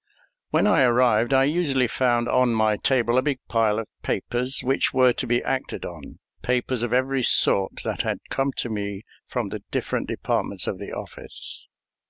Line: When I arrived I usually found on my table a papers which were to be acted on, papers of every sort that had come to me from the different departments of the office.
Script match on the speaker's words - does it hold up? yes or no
no